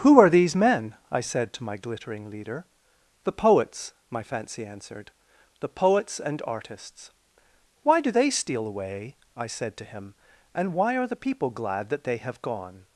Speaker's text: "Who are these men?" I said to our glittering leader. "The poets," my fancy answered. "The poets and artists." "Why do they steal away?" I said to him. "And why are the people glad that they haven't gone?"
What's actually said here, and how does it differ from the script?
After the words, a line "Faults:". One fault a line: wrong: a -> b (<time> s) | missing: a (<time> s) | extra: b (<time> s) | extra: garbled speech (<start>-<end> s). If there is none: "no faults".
"Who are these men?" I said to my glittering leader. "The poets," my fancy answered. "The poets and artists." "Why do they steal away?" I said to him. "And why are the people glad that they have gone?"
Faults:
wrong: our -> my (1.6 s)
wrong: haven't -> have (12.2 s)